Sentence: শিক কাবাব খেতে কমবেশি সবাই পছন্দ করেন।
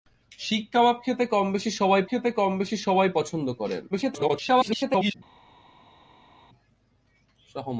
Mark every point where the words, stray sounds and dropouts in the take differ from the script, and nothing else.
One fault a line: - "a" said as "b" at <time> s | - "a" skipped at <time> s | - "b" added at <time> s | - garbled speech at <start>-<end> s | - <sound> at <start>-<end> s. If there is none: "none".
- "খেতে কমবেশি সবাই" added at 2.1 s
- garbled speech at 3.9-5.1 s